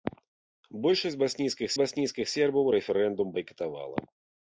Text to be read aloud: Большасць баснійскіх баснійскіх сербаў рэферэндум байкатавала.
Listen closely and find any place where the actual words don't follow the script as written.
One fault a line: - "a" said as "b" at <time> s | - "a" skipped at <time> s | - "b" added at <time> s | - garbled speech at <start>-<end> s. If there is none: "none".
none